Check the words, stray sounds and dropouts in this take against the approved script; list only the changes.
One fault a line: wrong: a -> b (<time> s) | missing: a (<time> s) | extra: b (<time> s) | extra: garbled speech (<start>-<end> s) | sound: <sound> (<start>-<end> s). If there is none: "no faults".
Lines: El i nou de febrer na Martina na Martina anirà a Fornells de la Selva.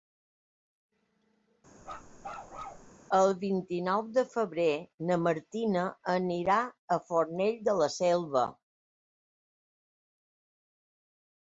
sound: bark (1.8-2.9 s)
extra: vint (3.4 s)
missing: na Martina (5.8 s)